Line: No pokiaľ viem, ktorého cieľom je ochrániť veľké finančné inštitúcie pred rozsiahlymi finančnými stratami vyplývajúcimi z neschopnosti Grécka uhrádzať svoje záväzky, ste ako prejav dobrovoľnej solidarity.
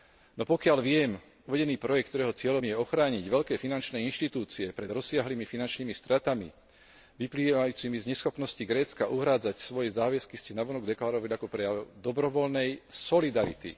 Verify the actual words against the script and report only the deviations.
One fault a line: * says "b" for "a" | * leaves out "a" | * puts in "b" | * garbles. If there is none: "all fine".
* puts in "uvedený projekt"
* puts in "navonok deklarovali"